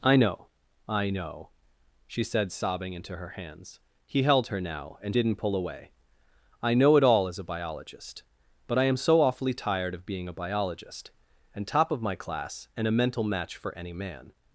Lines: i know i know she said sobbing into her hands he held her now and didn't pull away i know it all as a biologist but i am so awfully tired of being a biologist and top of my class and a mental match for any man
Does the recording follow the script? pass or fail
pass